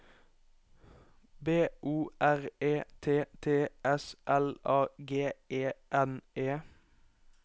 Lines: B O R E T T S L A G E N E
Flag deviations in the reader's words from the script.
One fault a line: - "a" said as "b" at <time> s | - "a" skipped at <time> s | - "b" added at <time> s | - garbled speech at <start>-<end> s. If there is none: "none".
none